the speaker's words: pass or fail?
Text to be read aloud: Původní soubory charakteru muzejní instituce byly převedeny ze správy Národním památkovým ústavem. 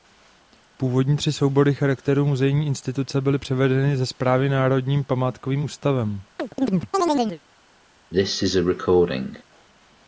fail